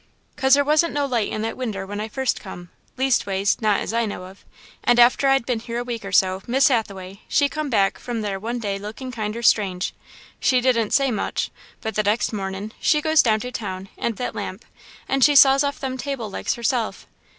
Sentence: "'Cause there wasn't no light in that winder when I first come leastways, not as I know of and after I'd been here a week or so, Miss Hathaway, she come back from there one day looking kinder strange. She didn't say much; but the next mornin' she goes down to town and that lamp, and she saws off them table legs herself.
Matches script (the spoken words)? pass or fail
pass